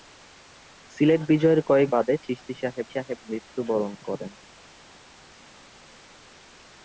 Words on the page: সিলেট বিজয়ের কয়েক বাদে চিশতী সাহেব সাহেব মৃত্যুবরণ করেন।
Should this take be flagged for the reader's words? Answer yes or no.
no